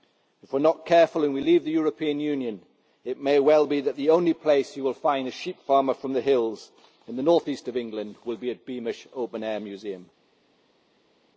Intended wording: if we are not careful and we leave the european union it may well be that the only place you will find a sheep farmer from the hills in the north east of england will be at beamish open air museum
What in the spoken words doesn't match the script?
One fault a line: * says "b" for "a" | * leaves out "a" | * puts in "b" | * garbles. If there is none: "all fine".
all fine